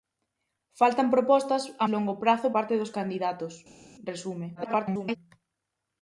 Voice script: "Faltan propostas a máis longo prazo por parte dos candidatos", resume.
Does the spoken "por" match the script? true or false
false